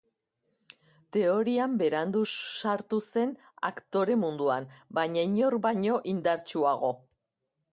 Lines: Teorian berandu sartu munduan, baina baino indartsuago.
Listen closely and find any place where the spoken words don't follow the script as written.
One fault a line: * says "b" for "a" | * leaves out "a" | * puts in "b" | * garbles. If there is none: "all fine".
* puts in "zen aktore"
* puts in "inor"